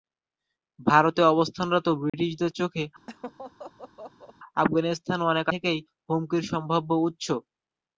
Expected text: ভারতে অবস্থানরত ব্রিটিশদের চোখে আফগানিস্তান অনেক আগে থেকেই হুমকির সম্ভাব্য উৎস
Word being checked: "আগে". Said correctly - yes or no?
no